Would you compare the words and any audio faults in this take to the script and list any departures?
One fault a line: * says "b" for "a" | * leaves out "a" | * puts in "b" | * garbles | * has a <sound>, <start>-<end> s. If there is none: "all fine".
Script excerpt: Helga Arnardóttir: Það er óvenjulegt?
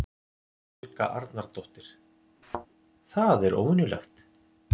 * has a thud, 2.4-2.7 s